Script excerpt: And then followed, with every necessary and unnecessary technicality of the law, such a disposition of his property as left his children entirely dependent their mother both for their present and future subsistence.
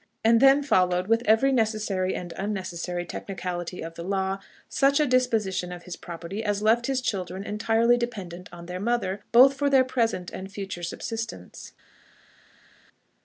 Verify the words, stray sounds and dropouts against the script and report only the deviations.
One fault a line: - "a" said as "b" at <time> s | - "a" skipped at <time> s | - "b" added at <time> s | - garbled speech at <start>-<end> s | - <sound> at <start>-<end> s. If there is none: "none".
- "on" added at 8.5 s